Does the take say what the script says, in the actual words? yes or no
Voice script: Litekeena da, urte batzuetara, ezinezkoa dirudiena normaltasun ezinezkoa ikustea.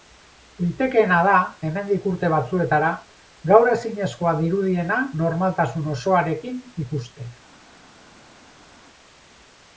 no